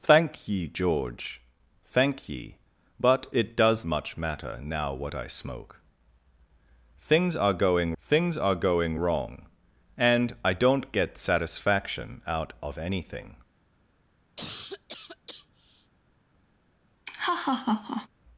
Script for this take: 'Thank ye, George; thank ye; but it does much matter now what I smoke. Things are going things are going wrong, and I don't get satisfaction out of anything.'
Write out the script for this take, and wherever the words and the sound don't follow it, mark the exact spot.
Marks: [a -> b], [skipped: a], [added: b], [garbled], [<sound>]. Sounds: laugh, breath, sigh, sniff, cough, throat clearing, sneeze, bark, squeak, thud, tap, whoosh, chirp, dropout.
'Thank ye, George; thank ye; but it does much matter now what I smoke. Things are going things are going wrong, and I don't get satisfaction out of anything.' [cough] [laugh]